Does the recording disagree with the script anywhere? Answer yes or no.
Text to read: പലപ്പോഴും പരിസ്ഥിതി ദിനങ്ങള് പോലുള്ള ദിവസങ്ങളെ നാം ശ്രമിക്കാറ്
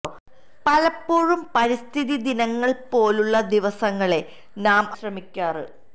no